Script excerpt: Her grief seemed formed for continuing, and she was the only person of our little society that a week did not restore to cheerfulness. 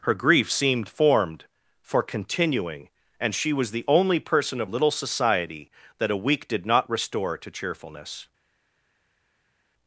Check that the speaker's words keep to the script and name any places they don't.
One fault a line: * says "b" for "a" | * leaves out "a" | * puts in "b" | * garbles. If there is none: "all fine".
* leaves out "our"